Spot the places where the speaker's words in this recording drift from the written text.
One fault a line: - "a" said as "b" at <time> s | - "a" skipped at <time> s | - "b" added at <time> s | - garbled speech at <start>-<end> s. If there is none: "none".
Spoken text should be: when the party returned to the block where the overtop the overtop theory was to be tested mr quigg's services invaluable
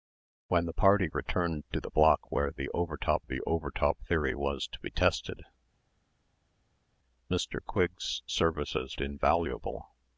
none